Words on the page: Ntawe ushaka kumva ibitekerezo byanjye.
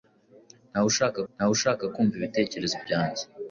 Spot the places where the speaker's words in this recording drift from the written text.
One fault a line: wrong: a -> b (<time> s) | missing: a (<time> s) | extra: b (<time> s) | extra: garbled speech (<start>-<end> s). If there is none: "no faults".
extra: ntawe ushaka (1.3 s)